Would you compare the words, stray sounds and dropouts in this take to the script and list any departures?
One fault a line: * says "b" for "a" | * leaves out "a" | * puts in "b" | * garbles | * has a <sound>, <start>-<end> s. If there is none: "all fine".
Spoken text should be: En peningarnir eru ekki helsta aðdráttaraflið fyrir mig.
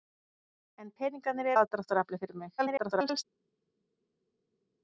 * leaves out "eru ekki helsta"
* garbles